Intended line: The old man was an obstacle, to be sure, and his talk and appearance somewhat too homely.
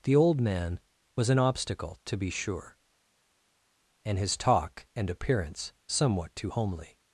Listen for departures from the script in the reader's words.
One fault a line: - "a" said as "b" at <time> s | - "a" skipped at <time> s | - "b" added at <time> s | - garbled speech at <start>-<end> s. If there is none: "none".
none